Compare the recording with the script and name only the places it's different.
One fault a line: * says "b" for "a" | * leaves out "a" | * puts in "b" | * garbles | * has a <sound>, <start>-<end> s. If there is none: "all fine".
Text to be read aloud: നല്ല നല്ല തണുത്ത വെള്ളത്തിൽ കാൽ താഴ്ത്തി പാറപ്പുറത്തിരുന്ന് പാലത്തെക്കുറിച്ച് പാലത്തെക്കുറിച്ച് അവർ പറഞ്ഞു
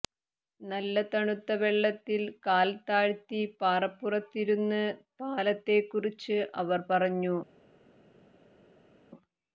* leaves out "നല്ല"
* leaves out "പാലത്തെക്കുറിച്ച്"